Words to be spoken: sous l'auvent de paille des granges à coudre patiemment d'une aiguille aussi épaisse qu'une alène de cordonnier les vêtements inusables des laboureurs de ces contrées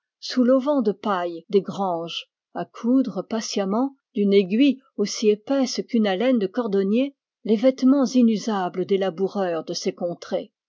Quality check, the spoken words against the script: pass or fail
pass